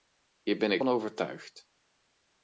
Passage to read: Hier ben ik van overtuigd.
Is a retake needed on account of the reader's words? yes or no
no